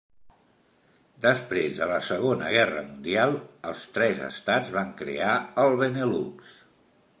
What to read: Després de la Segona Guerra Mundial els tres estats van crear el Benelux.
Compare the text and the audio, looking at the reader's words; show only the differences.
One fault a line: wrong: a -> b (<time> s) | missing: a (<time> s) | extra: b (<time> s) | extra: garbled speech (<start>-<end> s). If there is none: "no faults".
no faults